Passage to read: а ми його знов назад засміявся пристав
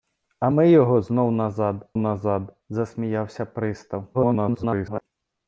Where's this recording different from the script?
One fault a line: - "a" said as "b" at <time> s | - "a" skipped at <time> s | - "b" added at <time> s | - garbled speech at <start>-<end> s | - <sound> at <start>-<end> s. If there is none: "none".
- "назад" added at 2.0 s
- garbled speech at 4.1-5.0 s